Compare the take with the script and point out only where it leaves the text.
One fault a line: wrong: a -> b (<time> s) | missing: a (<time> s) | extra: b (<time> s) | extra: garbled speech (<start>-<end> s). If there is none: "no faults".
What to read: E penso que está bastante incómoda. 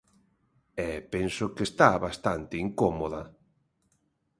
no faults